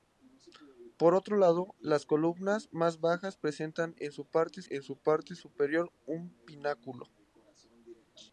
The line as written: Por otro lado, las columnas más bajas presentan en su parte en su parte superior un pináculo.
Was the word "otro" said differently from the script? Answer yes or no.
no